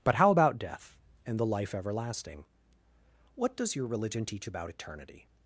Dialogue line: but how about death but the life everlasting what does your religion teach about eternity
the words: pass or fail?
fail